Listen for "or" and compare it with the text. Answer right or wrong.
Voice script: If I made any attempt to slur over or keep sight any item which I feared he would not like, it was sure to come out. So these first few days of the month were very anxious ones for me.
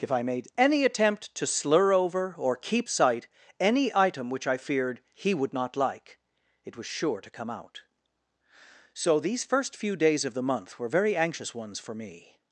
right